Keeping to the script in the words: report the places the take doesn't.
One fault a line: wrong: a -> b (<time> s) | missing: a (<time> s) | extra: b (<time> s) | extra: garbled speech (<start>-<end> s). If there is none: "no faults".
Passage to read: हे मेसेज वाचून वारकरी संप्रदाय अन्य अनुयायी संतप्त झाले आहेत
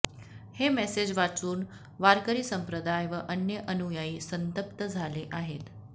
extra: व (3.1 s)